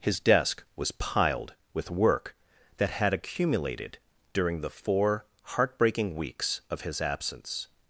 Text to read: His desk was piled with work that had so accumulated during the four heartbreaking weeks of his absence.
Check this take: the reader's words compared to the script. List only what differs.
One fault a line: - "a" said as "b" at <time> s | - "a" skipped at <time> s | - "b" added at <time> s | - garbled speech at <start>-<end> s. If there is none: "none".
- "so" skipped at 3.1 s